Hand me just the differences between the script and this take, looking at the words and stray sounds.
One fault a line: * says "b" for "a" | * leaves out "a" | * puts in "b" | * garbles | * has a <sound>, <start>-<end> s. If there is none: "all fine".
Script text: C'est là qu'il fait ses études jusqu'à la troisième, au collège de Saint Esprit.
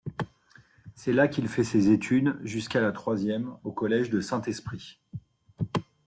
all fine